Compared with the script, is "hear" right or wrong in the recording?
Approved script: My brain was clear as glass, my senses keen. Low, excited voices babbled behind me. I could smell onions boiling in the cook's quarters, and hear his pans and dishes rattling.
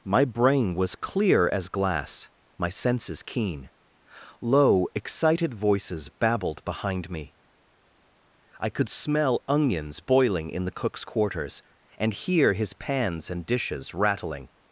right